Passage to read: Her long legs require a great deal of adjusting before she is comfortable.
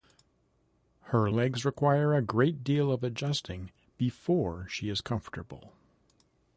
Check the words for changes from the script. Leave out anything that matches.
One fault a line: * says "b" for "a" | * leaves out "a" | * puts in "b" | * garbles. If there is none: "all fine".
* leaves out "long"